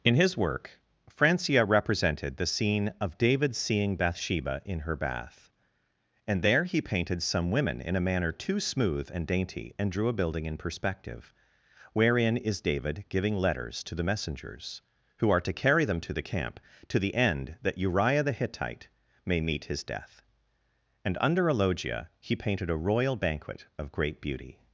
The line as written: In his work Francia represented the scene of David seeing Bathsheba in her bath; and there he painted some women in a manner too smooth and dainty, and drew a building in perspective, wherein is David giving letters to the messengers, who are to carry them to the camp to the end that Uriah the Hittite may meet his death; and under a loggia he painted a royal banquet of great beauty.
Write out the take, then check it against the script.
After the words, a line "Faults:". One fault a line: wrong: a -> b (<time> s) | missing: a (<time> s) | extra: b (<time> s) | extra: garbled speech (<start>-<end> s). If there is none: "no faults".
In his work Francia represented the scene of David seeing Bathsheba in her bath; and there he painted some women in a manner too smooth and dainty, and drew a building in perspective, wherein is David giving letters to the messengers, who are to carry them to the camp to the end that Uriah the Hittite may meet his death; and under a loggia he painted a royal banquet of great beauty.
Faults:
no faults